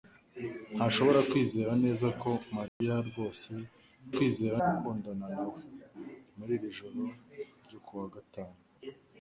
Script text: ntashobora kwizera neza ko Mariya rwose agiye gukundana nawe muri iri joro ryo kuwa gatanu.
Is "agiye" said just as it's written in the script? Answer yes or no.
no